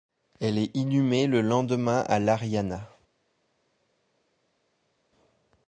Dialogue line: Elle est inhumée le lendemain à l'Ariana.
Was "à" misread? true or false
false